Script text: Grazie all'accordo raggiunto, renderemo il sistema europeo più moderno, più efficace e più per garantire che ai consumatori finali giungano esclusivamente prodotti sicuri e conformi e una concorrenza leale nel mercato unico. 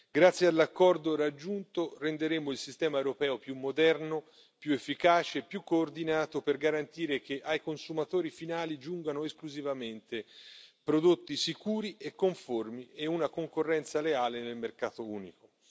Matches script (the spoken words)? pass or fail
fail